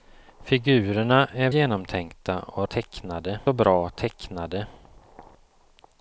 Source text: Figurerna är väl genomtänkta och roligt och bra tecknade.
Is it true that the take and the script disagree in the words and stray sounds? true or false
true